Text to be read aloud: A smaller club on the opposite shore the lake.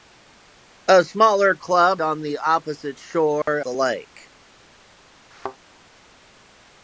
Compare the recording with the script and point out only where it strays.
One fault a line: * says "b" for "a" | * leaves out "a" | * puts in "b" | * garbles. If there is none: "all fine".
all fine